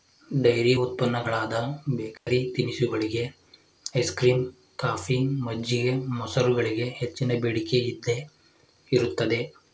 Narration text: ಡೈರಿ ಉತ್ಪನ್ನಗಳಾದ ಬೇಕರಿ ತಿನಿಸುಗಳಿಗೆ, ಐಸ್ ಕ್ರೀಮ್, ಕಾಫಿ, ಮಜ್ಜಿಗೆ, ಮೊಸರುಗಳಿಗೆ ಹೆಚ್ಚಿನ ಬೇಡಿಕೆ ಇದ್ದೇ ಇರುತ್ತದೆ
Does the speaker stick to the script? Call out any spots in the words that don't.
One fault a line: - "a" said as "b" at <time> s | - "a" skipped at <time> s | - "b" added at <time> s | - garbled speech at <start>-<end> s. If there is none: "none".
none